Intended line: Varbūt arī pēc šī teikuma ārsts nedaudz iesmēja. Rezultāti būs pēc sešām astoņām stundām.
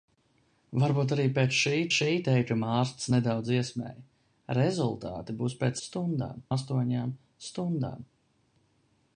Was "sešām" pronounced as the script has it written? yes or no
no